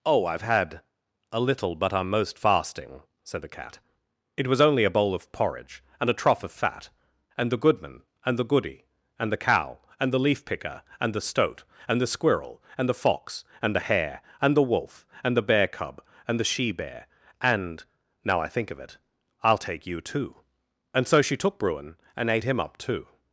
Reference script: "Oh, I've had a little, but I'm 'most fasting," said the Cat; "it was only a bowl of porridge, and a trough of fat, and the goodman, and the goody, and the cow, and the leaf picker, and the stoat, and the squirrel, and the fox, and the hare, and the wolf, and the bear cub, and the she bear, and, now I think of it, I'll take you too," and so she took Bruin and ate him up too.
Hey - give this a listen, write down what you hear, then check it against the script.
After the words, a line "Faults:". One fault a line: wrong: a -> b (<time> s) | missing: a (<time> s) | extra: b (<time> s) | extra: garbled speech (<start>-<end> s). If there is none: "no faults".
"Oh, I've had a little, but I'm 'most fasting," said the Cat; "it was only a bowl of porridge, and a trough of fat, and the goodman, and the goody, and the cow, and the leaf picker, and the stoat, and the squirrel, and the fox, and the hare, and the wolf, and the bear cub, and the she bear, and, now I think of it, I'll take you too," and so she took Bruin and ate him up too.
Faults:
no faults